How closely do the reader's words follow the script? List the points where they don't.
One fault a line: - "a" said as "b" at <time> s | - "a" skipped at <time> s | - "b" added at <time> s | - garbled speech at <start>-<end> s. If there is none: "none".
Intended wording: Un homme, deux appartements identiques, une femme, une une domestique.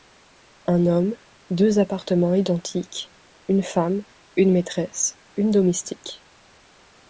- "maîtresse" added at 4.5 s